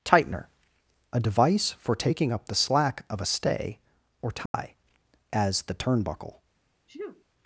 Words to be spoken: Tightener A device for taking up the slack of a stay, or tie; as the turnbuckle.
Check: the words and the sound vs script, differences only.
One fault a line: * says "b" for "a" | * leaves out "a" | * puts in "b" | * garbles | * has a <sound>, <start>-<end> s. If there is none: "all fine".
* has a dropout, 4.5-4.5 s
* has a sneeze, 6.9-7.2 s